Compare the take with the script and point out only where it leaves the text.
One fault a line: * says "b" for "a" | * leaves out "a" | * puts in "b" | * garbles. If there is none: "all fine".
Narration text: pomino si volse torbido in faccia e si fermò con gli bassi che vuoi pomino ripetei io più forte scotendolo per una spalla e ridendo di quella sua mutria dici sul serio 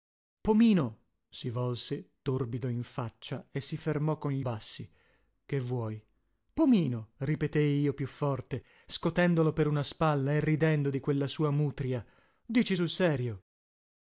all fine